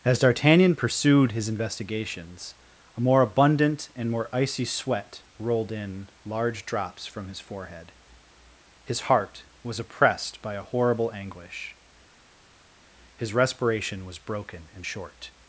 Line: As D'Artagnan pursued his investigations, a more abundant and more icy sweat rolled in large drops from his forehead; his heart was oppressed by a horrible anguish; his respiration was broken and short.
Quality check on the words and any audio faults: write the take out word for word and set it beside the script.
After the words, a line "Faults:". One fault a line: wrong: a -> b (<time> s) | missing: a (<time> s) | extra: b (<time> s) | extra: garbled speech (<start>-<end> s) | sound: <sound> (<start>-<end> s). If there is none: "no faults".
As D'Artagnan pursued his investigations, a more abundant and more icy sweat rolled in large drops from his forehead; his heart was oppressed by a horrible anguish; his respiration was broken and short.
Faults:
no faults